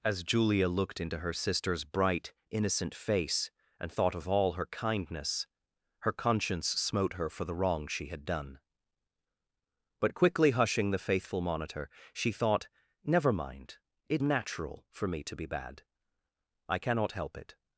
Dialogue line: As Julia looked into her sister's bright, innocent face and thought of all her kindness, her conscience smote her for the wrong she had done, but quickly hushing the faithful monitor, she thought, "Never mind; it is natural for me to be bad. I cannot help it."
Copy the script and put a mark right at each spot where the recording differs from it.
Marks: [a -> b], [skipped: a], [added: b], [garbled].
As Julia looked into her sister's bright, innocent face and thought of all her kindness, her conscience smote her for the wrong she had done, but quickly hushing the faithful monitor, she thought, "Never mind; it [skipped: is] natural for me to be bad. I cannot help it."